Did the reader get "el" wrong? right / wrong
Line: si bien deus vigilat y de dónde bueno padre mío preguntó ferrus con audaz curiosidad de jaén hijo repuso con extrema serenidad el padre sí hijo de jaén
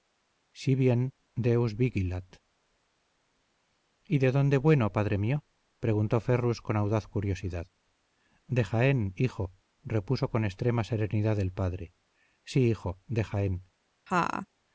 right